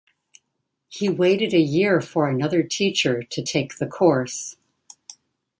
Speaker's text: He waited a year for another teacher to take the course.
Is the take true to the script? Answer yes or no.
yes